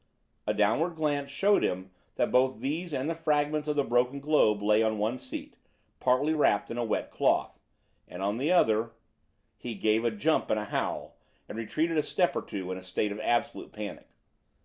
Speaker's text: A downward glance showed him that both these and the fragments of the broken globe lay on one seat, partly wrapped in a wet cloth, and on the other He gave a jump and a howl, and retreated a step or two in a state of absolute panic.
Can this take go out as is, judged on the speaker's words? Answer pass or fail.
pass